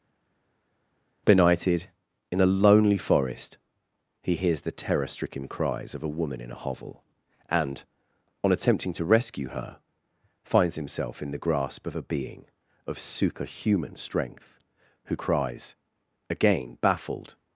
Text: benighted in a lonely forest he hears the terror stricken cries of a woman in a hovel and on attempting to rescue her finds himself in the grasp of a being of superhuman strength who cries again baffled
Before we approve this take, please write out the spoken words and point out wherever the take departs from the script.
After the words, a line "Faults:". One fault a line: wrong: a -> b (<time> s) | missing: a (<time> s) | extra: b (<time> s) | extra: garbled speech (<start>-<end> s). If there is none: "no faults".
benighted in a lonely forest he hears the terror stricken cries of a woman in a hovel and on attempting to rescue her finds himself in the grasp of a being of superhuman strength who cries again baffled
Faults:
no faults